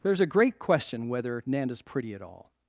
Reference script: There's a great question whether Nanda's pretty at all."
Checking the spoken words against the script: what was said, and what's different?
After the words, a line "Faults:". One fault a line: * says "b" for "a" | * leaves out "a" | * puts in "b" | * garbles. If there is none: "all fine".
There's a great question whether Nanda's pretty at all."
Faults:
all fine